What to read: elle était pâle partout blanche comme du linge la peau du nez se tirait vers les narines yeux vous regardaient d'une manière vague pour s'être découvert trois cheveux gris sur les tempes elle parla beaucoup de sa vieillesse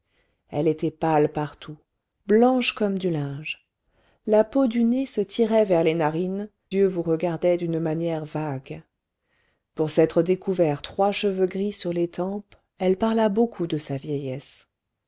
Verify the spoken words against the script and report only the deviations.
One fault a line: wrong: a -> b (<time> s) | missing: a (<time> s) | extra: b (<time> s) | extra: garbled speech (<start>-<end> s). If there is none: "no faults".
no faults